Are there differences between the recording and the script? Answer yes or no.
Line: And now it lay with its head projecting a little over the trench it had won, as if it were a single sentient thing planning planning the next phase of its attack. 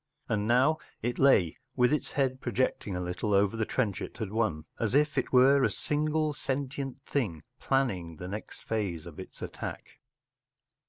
yes